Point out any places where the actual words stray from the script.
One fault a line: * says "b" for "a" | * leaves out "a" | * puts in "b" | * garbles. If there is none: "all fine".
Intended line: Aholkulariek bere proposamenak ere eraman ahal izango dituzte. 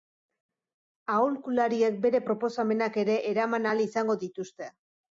all fine